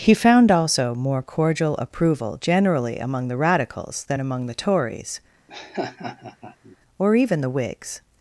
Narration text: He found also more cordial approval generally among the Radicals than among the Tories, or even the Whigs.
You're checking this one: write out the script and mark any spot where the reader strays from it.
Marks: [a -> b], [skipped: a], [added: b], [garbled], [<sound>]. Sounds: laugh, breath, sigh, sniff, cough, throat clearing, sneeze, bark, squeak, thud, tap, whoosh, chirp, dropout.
He found also more cordial approval generally among the Radicals than among the Tories, [laugh] or even the Whigs.